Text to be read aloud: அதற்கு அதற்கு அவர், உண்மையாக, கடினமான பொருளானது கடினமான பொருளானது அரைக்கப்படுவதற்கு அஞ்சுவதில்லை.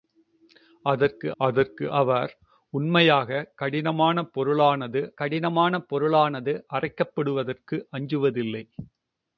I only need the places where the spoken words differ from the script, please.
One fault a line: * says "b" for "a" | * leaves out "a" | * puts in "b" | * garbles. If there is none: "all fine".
all fine